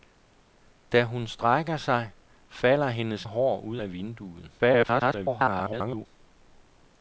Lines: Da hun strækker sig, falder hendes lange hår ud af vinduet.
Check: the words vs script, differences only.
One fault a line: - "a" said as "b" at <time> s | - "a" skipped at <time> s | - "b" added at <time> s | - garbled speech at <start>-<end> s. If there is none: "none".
- "lange" skipped at 3.3 s
- garbled speech at 4.6-6.1 s